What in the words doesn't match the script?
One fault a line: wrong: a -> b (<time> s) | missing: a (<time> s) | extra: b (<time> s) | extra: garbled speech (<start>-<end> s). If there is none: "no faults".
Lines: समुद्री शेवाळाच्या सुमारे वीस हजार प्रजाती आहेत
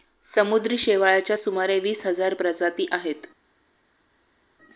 no faults